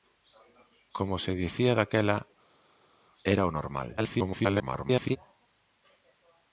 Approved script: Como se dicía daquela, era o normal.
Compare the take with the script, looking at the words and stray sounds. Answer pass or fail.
fail